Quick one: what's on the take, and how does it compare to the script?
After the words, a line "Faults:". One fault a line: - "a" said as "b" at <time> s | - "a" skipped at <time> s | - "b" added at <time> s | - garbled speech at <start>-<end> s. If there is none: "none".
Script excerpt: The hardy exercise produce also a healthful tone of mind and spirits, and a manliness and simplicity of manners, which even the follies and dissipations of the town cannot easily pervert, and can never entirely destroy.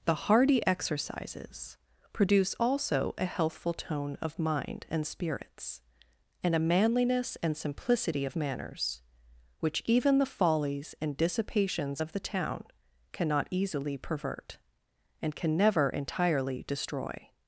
The hardy exercises produce also a healthful tone of mind and spirits, and a manliness and simplicity of manners, which even the follies and dissipations of the town cannot easily pervert, and can never entirely destroy.
Faults:
- "exercise" said as "exercises" at 0.7 s